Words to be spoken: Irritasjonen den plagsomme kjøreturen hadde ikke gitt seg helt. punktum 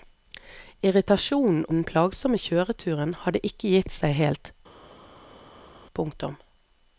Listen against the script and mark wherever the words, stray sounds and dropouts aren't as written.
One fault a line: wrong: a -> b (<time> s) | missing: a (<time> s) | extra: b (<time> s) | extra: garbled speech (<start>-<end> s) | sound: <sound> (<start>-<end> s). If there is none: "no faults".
no faults